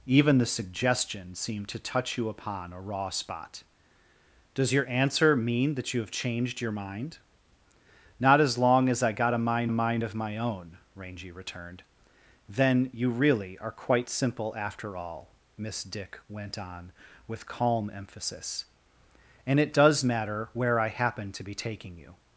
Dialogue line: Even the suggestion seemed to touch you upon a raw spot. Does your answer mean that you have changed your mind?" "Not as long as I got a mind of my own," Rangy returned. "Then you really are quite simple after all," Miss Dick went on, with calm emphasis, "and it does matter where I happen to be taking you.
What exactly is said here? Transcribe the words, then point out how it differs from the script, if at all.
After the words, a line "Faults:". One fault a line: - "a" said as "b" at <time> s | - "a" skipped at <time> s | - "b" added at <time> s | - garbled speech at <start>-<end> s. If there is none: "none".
Even the suggestion seemed to touch you upon a raw spot. Does your answer mean that you have changed your mind?" "Not as long as I got a mind mind of my own," Rangy returned. "Then you really are quite simple after all," Miss Dick went on, with calm emphasis, "and it does matter where I happen to be taking you.
Faults:
- "mind" added at 9.7 s